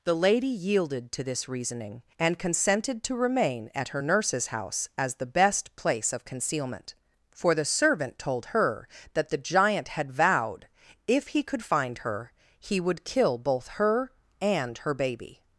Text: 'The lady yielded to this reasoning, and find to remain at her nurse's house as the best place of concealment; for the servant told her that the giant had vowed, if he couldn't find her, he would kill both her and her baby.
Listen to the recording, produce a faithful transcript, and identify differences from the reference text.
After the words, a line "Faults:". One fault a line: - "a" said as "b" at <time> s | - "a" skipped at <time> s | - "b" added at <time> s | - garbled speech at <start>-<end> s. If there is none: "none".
'The lady yielded to this reasoning, and consented to remain at her nurse's house as the best place of concealment; for the servant told her that the giant had vowed, if he could find her, he would kill both her and her baby.
Faults:
- "find" said as "consented" at 2.4 s
- "couldn't" said as "could" at 11.4 s